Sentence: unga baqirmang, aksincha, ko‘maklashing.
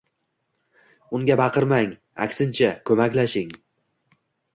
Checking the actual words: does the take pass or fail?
pass